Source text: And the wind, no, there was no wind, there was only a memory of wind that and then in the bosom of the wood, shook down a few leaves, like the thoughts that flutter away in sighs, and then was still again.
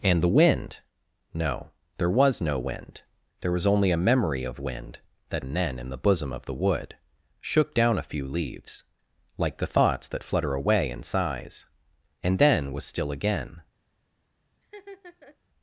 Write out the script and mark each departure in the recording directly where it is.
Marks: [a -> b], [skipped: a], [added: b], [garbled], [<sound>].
And the wind, no, there was no wind, there was only a memory of wind that and then in the bosom of the wood, shook down a few leaves, like the thoughts that flutter away in sighs, and then was still again. [laugh]